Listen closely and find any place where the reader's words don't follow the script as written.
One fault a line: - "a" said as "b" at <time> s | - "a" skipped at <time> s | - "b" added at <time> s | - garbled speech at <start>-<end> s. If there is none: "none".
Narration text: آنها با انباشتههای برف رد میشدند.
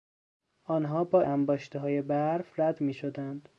none